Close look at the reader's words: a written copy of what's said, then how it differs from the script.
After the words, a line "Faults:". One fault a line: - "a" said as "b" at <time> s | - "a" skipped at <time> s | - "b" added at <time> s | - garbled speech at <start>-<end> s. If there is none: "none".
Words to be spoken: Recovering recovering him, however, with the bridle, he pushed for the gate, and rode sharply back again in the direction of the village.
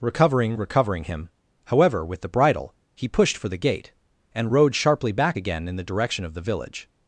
Recovering recovering him, however, with the bridle, he pushed for the gate, and rode sharply back again in the direction of the village.
Faults:
none